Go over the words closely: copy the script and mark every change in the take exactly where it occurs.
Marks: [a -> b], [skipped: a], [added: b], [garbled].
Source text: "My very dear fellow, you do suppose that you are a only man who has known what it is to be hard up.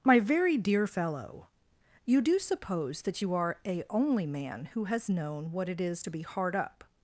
"My very dear fellow, you do suppose that you are a only man who has known what it is to be hard up.